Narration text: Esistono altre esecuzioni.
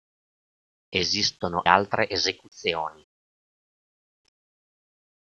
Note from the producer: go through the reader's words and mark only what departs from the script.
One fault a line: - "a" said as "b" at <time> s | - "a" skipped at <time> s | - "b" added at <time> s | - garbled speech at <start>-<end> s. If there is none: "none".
none